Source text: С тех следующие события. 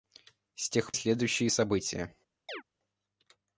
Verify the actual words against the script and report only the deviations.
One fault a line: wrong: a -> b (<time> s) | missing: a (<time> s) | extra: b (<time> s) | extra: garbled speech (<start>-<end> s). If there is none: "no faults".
no faults